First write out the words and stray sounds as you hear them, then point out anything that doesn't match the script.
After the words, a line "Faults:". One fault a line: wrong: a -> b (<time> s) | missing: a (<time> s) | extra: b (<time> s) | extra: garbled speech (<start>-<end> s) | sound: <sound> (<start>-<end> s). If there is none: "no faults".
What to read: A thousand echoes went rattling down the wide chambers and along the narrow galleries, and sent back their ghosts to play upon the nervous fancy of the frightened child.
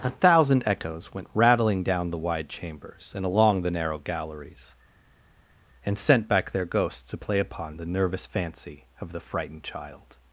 A thousand echoes went rattling down the wide chambers and along the narrow galleries, and sent back their ghosts to play upon the nervous fancy of the frightened child.
Faults:
no faults